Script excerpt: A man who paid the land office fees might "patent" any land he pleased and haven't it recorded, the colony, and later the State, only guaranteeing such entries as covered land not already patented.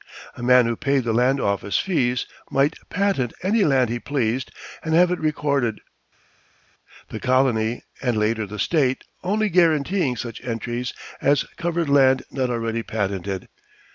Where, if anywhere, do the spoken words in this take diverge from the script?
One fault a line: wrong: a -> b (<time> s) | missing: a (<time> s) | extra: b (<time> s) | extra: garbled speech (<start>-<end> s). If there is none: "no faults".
wrong: haven't -> have (4.9 s)